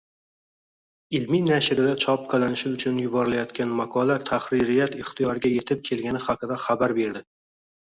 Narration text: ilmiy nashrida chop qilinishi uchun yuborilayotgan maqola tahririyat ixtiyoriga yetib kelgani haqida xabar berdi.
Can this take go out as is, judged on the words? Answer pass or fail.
pass